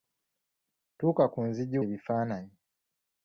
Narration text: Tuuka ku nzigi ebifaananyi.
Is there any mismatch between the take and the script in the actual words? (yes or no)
no